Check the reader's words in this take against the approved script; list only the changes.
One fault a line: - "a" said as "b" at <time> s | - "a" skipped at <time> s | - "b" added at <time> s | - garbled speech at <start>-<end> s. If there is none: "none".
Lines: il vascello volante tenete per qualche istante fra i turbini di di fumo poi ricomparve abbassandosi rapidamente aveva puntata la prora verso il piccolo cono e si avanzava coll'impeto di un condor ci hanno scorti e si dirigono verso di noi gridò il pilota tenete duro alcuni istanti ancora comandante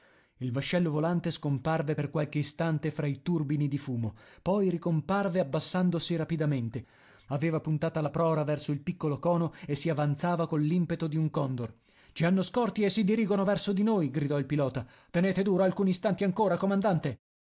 - "tenete" said as "scomparve" at 1.3 s
- "di" skipped at 3.8 s